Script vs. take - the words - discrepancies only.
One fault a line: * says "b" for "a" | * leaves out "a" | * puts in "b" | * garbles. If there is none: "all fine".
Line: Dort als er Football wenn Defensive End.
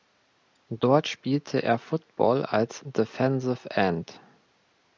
* says "spielte" for "als"
* says "als" for "wenn"